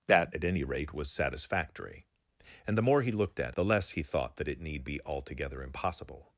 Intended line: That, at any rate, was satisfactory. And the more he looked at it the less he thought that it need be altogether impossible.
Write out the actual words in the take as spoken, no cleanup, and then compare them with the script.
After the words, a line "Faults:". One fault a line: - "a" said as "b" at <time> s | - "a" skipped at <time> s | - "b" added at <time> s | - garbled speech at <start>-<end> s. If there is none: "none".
That, at any rate, was satisfactory. And the more he looked at the less he thought that it need be altogether impossible.
Faults:
- "it" skipped at 3.6 s